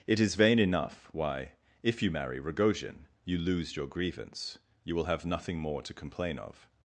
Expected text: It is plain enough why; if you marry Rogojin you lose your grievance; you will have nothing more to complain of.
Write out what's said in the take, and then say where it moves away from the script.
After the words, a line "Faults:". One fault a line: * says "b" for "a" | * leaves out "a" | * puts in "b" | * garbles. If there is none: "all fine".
It is vain enough why; if you marry Rogojin you lose your grievance; you will have nothing more to complain of.
Faults:
* says "vain" for "plain"